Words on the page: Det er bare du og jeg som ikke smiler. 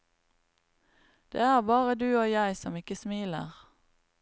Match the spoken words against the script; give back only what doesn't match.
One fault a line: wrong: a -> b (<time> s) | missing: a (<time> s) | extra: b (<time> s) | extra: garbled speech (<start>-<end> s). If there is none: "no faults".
no faults